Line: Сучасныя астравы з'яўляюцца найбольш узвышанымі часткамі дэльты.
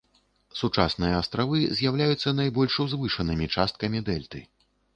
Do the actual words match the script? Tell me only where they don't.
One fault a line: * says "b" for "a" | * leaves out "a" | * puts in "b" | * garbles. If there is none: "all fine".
all fine